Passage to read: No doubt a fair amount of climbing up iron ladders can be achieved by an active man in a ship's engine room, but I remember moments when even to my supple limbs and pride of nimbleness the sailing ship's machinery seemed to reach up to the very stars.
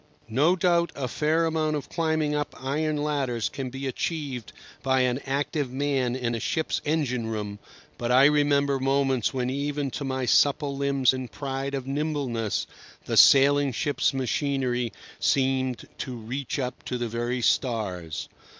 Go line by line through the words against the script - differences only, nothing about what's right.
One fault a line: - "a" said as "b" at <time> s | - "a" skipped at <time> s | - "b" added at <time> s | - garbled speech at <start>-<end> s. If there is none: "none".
none